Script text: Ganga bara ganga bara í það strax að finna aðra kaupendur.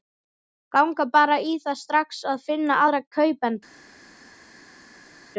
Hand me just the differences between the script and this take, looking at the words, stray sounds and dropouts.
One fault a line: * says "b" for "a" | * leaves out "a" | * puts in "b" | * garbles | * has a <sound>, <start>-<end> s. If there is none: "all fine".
* leaves out "ganga bara"